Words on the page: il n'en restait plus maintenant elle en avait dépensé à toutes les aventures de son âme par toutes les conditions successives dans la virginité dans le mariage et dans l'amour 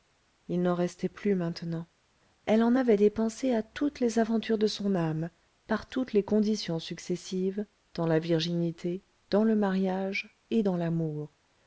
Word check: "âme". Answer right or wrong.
right